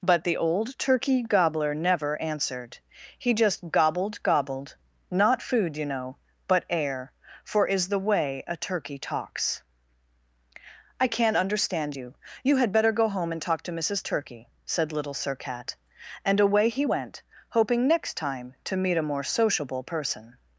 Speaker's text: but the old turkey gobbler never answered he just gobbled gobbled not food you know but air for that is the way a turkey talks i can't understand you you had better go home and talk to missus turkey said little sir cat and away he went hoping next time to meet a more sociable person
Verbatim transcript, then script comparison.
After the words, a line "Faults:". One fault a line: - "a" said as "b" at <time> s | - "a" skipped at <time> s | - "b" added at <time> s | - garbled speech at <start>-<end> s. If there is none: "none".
but the old turkey gobbler never answered he just gobbled gobbled not food you know but air for is the way a turkey talks i can't understand you you had better go home and talk to missus turkey said little sir cat and away he went hoping next time to meet a more sociable person
Faults:
- "that" skipped at 7.7 s